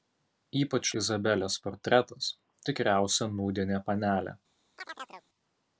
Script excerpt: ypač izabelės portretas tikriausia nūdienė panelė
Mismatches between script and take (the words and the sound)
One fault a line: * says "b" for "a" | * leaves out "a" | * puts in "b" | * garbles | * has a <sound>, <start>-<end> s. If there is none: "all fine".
* has a chirp, 4.8-5.3 s